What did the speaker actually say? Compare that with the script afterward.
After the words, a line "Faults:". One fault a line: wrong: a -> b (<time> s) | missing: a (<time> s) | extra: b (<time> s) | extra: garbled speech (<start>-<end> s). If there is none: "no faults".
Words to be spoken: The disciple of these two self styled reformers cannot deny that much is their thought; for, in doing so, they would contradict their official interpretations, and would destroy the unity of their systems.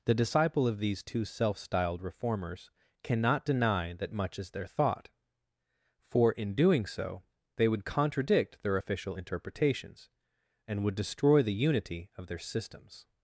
The disciple of these two self styled reformers cannot deny that much is their thought; for, in doing so, they would contradict their official interpretations, and would destroy the unity of their systems.
Faults:
no faults